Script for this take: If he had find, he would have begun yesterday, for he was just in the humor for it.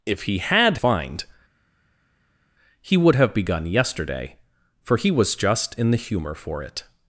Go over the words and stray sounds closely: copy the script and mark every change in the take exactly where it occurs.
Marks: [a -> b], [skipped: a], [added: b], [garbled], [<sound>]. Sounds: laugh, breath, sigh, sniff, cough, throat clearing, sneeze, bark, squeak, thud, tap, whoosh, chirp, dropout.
If he had find, he would have begun yesterday, for he was just in the humor for it.